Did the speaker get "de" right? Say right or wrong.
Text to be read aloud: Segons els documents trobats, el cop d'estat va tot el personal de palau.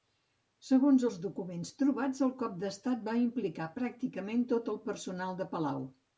right